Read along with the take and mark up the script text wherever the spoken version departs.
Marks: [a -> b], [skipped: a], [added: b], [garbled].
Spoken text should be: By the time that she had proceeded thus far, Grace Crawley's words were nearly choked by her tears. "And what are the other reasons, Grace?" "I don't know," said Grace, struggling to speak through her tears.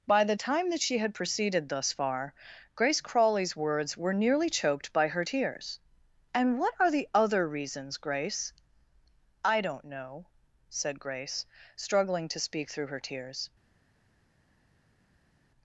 By the time that she had proceeded thus far, Grace Crawley's words were nearly choked by her tears. "And what are the other reasons, Grace?" "I don't know," said Grace, struggling to speak through her tears.